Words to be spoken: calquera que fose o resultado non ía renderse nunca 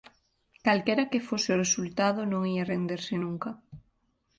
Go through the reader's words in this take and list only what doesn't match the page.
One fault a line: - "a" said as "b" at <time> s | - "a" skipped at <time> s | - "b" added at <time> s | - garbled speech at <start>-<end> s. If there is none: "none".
none